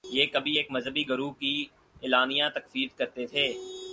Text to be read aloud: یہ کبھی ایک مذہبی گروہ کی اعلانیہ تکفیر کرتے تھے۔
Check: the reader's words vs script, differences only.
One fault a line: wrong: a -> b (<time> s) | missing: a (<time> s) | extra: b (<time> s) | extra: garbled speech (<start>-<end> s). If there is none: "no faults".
no faults